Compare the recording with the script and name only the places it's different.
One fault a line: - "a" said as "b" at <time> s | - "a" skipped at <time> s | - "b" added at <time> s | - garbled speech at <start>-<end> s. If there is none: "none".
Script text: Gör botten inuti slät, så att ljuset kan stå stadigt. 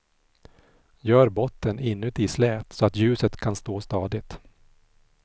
none